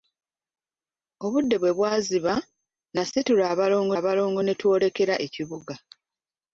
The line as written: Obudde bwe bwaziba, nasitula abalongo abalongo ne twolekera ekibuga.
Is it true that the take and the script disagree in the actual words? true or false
false